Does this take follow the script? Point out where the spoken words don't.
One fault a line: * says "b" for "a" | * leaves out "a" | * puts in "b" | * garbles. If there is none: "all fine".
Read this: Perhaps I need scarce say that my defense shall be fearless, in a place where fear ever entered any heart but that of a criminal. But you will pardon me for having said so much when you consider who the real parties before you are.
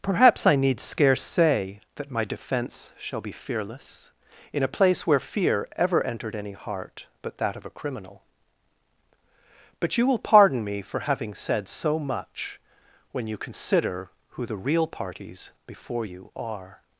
all fine